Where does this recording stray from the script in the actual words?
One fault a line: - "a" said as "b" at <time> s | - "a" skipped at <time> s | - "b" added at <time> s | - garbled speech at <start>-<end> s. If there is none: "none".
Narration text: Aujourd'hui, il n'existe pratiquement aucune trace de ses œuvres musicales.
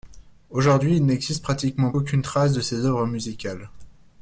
none